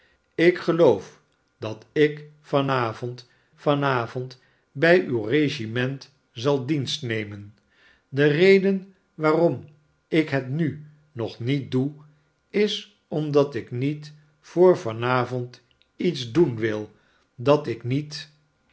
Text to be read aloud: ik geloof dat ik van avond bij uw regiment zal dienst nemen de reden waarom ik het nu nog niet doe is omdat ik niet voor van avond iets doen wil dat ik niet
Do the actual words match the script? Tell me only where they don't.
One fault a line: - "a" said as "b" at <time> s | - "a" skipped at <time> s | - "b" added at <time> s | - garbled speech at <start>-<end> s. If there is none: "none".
- "van avond" added at 3.5 s